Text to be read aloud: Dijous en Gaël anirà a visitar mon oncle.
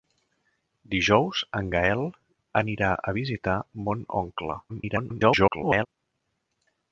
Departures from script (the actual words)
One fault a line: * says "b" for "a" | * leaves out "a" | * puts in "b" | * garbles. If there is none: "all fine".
* garbles